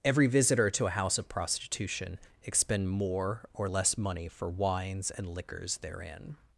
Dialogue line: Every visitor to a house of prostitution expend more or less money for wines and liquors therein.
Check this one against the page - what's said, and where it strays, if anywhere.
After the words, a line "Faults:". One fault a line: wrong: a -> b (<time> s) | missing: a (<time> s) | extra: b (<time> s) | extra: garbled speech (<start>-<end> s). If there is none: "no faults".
Every visitor to a house of prostitution expend more or less money for wines and liquors therein.
Faults:
no faults